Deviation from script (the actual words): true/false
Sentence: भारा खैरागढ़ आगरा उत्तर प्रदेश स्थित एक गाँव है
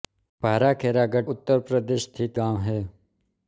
true